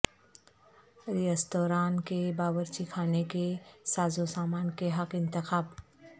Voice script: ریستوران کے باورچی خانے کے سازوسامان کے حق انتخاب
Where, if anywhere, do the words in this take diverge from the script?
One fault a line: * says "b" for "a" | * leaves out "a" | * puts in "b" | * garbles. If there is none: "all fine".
all fine